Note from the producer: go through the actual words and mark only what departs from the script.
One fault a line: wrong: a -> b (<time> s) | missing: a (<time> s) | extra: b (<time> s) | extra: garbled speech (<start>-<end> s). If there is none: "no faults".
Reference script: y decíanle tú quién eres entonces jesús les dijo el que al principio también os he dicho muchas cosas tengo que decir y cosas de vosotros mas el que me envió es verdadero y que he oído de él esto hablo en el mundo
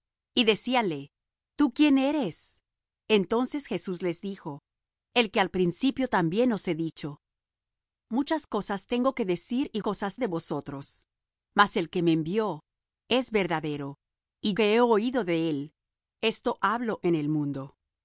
no faults